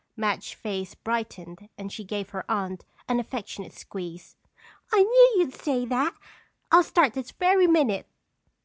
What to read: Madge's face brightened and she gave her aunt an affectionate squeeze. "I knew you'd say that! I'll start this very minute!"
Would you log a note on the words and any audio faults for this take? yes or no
no